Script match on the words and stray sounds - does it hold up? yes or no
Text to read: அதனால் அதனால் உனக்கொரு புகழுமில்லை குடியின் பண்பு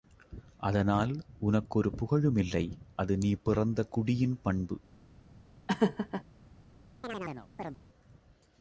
no